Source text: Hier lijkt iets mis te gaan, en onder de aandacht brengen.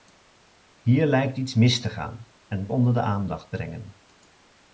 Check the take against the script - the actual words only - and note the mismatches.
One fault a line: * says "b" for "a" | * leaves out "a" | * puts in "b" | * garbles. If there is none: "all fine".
all fine